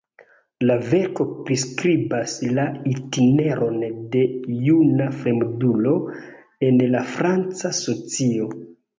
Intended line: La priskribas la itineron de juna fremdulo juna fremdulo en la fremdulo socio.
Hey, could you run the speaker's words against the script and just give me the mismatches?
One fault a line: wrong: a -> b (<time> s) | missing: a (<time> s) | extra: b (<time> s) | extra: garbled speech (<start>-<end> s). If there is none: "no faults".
extra: verko (0.9 s)
missing: juna fremdulo (5.9 s)
wrong: fremdulo -> franca (7.1 s)